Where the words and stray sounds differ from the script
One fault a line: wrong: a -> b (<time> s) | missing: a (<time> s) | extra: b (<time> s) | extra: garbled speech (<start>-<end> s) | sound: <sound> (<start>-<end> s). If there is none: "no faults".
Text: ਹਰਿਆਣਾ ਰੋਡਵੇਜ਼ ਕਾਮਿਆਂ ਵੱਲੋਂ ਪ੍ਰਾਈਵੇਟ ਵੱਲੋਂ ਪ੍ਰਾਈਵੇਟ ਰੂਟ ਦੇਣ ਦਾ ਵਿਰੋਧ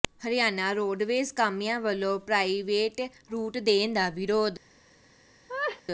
missing: ਵੱਲੋਂ ਪ੍ਰਾਈਵੇਟ (3.0 s)
sound: laugh (5.5-5.8 s)